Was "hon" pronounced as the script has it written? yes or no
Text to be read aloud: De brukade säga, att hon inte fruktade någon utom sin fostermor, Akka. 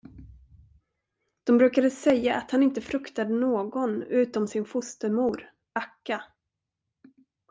no